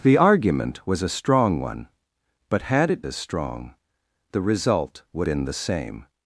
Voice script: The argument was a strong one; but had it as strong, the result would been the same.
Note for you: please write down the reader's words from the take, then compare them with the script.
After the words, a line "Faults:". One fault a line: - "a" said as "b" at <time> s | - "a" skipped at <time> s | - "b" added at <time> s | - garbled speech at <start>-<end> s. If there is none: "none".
The argument was a strong one; but had it as strong, the result would been the same.
Faults:
none